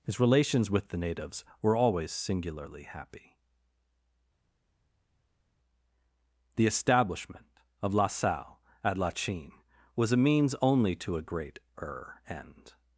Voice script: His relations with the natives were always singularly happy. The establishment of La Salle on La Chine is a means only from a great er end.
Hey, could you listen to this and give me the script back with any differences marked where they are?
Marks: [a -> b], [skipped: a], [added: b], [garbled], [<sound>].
His relations with the natives were always singularly happy. The establishment of La Salle [on -> at] La Chine [is -> was] a means only [from -> to] a great er end.